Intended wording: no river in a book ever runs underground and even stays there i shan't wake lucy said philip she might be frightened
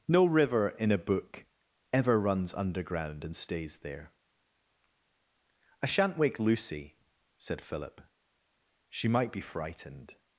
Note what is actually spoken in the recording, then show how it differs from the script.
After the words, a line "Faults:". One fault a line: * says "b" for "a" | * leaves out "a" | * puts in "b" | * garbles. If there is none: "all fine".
no river in a book ever runs underground and stays there i shan't wake lucy said philip she might be frightened
Faults:
* leaves out "even"